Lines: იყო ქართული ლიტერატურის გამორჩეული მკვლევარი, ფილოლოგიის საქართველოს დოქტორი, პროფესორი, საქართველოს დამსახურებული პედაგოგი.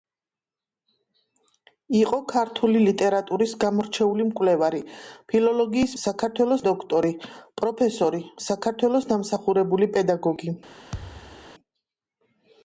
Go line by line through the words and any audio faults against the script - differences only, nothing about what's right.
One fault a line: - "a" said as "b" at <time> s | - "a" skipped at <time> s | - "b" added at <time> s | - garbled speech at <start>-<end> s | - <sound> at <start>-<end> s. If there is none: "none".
- thud at 10.9-11.5 s